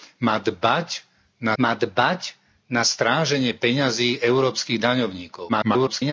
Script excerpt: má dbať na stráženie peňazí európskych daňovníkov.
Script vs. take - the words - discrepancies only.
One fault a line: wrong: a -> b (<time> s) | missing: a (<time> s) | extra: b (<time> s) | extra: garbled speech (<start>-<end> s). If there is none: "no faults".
extra: má dbať na (1.5 s)
extra: garbled speech (5.5-6.1 s)